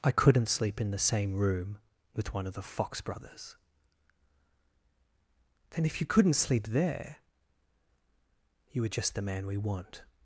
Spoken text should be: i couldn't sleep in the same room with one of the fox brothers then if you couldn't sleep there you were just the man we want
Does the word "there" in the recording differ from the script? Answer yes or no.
no